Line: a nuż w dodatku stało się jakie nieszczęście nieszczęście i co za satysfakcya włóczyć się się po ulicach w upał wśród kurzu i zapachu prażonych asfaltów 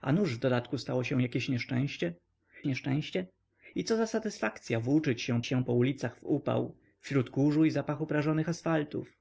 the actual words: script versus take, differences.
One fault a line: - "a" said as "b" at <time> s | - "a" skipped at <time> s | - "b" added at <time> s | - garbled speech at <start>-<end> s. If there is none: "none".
none